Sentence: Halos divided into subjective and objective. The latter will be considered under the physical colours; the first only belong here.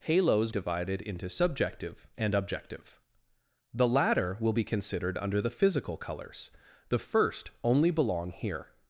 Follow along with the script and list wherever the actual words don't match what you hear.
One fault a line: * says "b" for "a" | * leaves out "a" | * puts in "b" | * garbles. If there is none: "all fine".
all fine